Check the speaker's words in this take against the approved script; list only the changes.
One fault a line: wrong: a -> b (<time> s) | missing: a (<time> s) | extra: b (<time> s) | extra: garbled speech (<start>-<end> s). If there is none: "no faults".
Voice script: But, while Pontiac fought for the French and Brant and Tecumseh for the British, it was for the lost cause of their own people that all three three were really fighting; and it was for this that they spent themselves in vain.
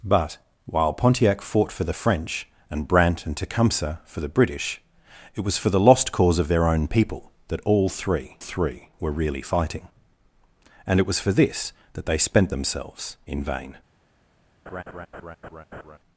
no faults